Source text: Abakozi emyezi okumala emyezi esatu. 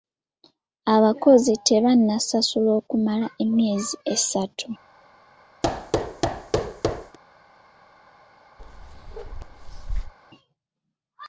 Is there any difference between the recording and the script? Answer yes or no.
yes